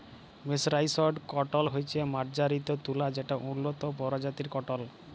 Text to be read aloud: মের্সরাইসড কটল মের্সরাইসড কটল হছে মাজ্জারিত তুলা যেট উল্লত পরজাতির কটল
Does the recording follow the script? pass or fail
fail